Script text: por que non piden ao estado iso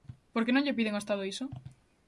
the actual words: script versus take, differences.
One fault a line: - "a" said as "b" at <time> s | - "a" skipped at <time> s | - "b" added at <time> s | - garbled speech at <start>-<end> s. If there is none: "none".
- "lle" added at 0.7 s